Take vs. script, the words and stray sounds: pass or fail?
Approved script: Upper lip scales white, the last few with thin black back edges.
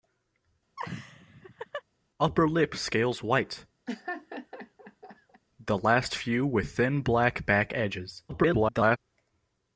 fail